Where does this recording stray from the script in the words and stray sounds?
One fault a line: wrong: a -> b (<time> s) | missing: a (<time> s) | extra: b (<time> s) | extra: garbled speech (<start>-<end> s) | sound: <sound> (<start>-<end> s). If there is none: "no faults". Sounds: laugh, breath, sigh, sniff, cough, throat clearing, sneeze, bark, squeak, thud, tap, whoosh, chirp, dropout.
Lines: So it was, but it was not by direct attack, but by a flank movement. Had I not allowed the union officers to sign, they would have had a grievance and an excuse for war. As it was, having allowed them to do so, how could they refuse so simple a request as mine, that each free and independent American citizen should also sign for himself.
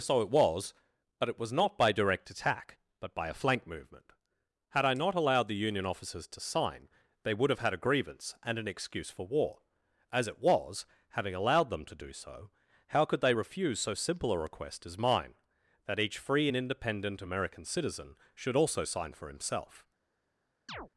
sound: chirp (20.7-20.9 s)